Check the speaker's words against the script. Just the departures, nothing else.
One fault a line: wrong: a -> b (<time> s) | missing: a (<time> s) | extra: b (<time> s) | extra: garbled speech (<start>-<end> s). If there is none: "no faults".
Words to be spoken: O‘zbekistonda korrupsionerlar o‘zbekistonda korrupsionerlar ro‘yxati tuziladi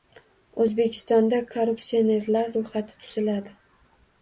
missing: o‘zbekistonda korrupsionerlar (2.5 s)